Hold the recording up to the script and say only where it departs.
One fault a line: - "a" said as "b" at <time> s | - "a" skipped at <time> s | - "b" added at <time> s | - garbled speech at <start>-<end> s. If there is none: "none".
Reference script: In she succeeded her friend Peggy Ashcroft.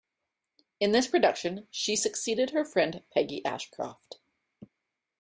- "this production" added at 0.9 s